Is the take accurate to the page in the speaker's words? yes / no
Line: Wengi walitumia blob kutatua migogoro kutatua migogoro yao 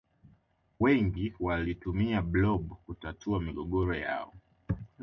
no